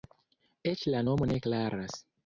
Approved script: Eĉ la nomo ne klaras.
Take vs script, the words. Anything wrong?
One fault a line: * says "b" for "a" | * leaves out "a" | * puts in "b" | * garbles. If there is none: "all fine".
all fine